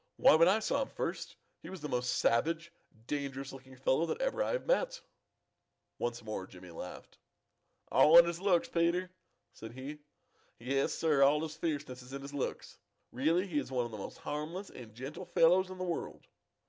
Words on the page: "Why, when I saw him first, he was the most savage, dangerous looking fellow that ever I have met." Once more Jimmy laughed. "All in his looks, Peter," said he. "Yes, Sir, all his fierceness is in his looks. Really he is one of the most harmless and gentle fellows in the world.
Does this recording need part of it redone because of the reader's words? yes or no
no